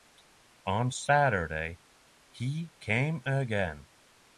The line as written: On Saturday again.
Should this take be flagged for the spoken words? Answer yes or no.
yes